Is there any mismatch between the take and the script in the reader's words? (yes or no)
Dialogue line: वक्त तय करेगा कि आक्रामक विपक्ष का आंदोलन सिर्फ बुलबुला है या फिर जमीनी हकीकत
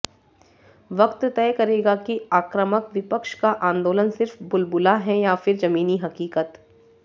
no